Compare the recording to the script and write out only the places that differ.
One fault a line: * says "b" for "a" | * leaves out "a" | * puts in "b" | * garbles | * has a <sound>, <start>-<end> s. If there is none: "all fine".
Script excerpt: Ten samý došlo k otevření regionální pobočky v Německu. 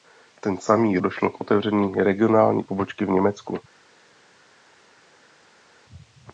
all fine